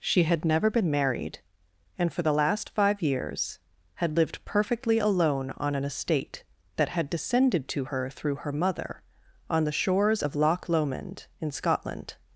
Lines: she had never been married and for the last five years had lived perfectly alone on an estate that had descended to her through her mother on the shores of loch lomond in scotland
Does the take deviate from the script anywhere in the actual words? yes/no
no